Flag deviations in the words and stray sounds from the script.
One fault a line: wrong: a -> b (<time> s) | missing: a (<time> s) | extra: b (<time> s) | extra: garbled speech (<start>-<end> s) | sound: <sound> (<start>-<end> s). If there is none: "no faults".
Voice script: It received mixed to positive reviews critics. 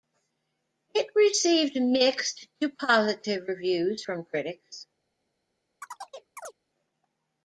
extra: from (4.0 s)
sound: chirp (5.8-6.5 s)